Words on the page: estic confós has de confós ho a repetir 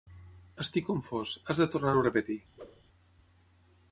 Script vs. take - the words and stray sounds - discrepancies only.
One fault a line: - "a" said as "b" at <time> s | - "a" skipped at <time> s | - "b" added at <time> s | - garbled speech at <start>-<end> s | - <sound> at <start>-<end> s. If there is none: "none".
- "confós" said as "tornar" at 1.7 s
- whoosh at 2.6-2.8 s